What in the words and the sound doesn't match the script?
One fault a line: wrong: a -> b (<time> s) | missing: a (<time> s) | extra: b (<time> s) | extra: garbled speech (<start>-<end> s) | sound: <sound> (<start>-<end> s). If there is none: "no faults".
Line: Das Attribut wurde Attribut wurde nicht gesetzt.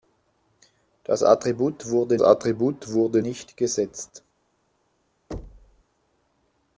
sound: thud (5.3-5.8 s)